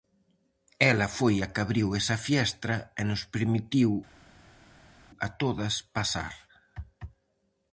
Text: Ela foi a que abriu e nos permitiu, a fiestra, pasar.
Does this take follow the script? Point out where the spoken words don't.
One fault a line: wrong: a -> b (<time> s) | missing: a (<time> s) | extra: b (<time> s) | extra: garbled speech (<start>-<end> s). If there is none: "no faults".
extra: esa fiestra (2.0 s)
wrong: fiestra -> todas (5.4 s)